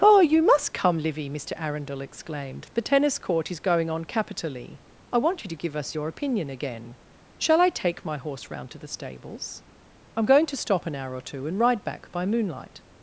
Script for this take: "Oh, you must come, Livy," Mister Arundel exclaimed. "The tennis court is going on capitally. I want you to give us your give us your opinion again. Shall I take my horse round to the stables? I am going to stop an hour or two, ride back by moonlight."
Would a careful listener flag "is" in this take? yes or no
no